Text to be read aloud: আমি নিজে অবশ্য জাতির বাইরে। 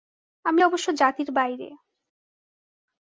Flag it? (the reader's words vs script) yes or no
yes